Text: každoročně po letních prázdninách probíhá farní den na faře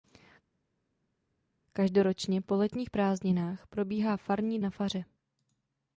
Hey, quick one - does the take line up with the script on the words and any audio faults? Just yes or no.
no